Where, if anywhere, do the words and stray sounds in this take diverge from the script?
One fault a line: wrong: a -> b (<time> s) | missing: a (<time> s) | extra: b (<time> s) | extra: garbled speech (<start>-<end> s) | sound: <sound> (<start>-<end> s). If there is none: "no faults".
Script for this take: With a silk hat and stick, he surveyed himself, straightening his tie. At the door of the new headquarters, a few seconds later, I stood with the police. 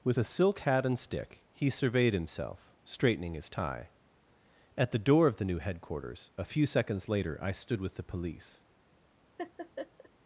sound: laugh (9.4-10.1 s)